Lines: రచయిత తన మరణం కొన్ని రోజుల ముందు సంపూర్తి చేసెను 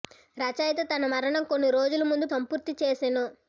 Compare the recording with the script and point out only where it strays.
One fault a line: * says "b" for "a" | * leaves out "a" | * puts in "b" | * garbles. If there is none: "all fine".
all fine